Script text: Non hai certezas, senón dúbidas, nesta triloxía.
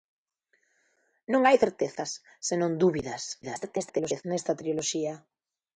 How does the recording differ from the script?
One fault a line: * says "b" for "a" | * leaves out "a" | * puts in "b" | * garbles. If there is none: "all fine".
* garbles